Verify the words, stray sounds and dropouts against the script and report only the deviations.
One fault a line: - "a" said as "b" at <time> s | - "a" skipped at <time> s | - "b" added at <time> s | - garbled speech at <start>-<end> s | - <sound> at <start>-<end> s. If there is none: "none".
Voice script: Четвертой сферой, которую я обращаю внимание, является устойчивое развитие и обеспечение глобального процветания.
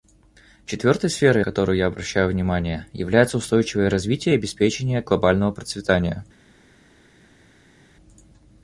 none